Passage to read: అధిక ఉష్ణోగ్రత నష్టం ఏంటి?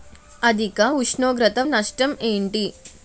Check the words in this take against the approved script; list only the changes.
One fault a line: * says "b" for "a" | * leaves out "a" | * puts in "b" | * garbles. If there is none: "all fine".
all fine